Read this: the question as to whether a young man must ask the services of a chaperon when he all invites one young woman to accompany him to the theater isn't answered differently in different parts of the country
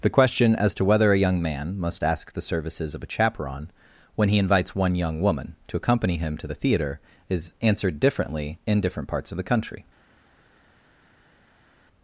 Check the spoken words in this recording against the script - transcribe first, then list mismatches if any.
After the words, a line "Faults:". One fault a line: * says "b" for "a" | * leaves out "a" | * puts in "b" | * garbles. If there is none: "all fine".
the question as to whether a young man must ask the services of a chaperon when he invites one young woman to accompany him to the theater is answered differently in different parts of the country
Faults:
* leaves out "all"
* says "is" for "isn't"